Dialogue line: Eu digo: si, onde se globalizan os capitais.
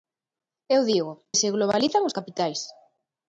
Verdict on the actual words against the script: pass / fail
fail